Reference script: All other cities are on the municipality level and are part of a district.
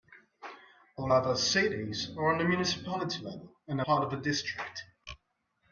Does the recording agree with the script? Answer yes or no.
no